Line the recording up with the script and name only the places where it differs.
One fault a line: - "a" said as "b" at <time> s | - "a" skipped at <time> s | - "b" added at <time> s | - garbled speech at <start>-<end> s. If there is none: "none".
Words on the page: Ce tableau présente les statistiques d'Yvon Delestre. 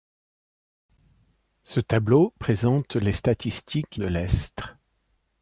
- "d'Yvon" skipped at 4.0 s